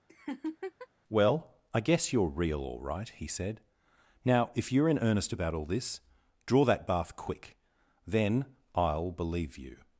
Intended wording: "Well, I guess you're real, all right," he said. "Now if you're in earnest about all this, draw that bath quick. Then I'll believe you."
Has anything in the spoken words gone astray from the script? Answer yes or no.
no